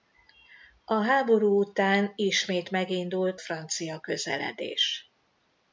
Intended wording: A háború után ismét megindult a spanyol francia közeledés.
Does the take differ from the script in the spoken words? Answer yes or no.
yes